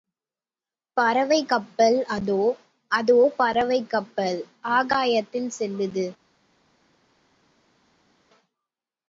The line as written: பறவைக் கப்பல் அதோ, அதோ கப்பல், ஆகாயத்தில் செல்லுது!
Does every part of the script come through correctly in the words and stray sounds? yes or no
no